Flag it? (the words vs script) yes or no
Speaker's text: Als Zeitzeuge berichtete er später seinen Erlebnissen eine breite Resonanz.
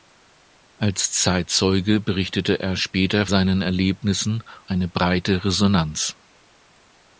no